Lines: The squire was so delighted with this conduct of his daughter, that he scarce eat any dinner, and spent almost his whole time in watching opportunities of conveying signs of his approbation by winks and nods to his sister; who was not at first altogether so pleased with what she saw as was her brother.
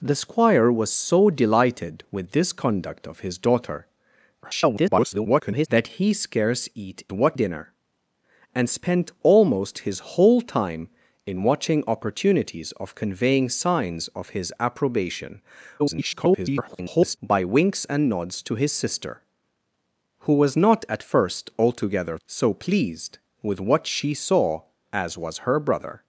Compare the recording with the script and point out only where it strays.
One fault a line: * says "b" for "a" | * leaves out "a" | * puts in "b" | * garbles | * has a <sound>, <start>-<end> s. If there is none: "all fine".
* garbles
* says "what" for "any"
* garbles